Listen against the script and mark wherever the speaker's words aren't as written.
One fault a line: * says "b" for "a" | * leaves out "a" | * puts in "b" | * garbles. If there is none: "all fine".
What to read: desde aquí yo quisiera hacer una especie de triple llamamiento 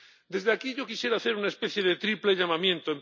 all fine